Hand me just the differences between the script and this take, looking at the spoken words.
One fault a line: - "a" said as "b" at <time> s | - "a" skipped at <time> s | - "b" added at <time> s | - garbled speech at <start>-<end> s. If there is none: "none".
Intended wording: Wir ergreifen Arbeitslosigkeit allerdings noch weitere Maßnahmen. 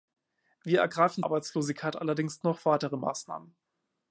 none